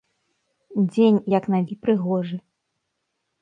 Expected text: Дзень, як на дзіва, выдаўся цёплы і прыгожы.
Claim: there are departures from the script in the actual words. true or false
true